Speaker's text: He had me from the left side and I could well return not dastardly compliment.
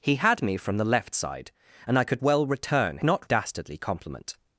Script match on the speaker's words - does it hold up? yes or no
yes